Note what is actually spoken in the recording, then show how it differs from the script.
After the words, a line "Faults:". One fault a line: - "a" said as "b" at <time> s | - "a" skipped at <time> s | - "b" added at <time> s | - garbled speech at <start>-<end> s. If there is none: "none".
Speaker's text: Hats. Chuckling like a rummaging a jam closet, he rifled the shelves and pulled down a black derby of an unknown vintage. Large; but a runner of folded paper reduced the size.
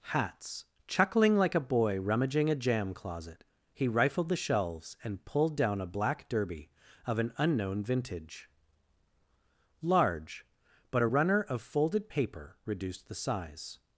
Hats. Chuckling like a boy rummaging a jam closet, he rifled the shelves and pulled down a black derby of an unknown vintage. Large; but a runner of folded paper reduced the size.
Faults:
- "boy" added at 1.6 s